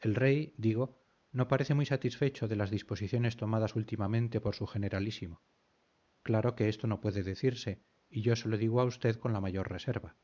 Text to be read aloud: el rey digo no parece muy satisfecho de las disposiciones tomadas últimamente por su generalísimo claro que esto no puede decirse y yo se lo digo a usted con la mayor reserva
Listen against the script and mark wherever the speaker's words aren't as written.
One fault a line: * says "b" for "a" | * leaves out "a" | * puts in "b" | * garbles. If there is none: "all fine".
all fine